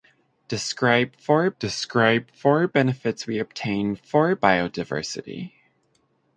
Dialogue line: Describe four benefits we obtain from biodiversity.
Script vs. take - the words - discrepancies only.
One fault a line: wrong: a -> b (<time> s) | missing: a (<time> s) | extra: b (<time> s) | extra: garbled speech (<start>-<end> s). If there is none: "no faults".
extra: describe four (1.6 s)
wrong: from -> four (4.0 s)